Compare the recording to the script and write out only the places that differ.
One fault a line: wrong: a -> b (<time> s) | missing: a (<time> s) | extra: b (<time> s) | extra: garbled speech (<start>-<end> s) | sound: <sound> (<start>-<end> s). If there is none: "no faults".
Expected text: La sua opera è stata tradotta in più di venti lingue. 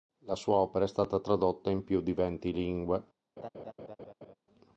sound: laugh (3.4-4.3 s)